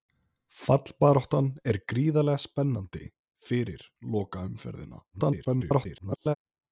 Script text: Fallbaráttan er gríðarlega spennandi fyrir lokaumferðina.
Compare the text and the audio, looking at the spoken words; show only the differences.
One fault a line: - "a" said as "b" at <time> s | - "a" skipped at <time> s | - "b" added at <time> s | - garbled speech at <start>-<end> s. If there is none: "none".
- garbled speech at 5.1-6.4 s